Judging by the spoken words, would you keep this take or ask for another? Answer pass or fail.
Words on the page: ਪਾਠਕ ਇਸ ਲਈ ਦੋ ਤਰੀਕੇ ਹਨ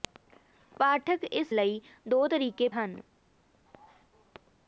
pass